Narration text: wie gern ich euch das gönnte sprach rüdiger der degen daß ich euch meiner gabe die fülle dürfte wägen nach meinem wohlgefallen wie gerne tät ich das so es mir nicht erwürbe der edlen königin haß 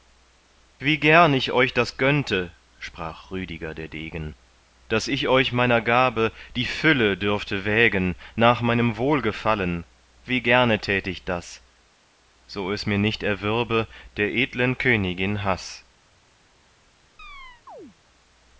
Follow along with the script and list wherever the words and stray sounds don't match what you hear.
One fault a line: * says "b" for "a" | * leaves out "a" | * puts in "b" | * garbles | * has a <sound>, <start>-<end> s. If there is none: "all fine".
* has a chirp, 17.2-18.0 s